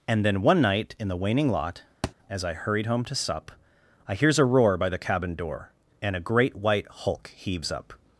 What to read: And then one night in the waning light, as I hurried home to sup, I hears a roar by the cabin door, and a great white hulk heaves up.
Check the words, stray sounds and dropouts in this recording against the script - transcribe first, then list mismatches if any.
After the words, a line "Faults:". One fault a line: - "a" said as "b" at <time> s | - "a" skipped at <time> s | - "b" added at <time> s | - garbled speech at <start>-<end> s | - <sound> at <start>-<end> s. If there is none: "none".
And then one night in the waning lot, as I hurried home to sup, I hears a roar by the cabin door, and a great white hulk heaves up.
Faults:
- "light" said as "lot" at 1.5 s
- thud at 2.0-2.1 s